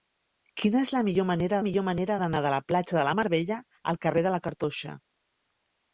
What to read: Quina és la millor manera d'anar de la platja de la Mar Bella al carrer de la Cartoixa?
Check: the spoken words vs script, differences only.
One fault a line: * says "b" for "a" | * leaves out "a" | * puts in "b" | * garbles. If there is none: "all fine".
* puts in "millor manera"